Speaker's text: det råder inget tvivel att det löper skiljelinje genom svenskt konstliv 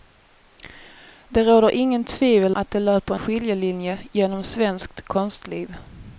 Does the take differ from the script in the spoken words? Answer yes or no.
no